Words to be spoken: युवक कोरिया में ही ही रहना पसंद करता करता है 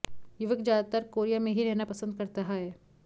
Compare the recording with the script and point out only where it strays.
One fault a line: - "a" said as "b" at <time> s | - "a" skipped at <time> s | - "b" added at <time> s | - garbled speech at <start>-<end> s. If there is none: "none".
- "ज्यादातर" added at 0.6 s
- "ही" skipped at 1.6 s
- "करता" skipped at 2.4 s